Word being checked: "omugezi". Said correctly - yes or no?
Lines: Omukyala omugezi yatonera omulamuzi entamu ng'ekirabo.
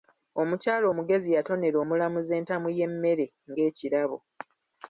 yes